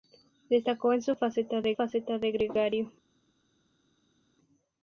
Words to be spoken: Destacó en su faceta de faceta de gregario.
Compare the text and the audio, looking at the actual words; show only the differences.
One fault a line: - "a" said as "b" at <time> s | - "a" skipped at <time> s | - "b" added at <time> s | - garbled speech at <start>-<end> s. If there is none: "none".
none